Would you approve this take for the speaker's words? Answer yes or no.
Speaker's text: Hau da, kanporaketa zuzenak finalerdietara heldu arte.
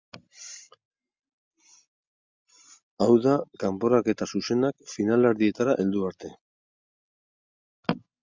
yes